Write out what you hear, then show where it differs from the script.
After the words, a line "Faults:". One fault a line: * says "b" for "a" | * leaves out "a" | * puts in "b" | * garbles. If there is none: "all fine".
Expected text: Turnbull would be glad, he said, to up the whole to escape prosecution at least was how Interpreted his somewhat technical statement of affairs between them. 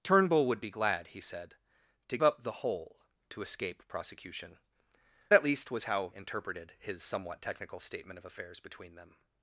Turnbull would be glad, he said, to up the whole to escape prosecution at least was how Interpreted his somewhat technical statement of affairs between them.
Faults:
all fine